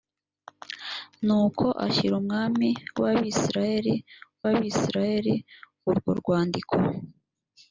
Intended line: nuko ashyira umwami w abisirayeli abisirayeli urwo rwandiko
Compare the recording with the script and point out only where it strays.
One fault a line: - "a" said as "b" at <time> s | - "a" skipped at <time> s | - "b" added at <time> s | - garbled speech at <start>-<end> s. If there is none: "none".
none